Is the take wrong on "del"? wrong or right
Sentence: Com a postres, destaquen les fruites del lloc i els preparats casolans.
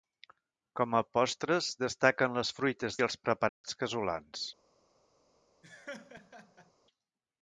wrong